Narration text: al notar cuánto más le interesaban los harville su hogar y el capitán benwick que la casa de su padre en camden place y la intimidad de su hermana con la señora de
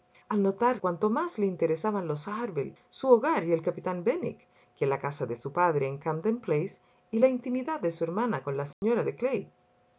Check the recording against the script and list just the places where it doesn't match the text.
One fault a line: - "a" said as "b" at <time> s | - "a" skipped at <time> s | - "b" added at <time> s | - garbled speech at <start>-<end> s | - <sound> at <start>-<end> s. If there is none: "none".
- dropout at 8.7-8.8 s